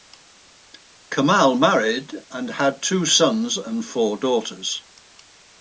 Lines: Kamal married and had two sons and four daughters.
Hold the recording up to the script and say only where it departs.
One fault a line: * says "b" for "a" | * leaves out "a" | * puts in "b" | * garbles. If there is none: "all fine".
all fine